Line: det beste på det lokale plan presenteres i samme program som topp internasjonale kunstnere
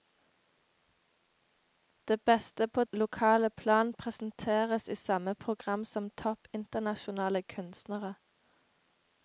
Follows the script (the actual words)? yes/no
no